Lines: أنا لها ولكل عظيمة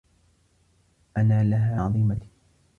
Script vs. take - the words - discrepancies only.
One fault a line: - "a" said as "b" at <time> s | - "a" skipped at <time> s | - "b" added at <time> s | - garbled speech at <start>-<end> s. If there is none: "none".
- "ولكل" skipped at 1.8 s